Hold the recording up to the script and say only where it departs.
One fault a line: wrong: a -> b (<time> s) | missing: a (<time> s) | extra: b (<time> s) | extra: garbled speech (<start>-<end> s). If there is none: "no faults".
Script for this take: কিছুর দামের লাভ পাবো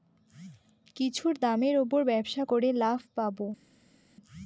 extra: উপর ব্যবসা করে (1.8 s)